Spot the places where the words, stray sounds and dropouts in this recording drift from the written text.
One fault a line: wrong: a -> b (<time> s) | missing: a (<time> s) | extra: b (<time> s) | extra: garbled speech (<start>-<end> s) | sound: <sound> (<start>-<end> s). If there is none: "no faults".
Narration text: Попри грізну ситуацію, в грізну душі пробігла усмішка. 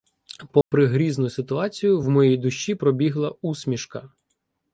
sound: dropout (0.6-0.7 s)
wrong: грізну -> моїй (2.1 s)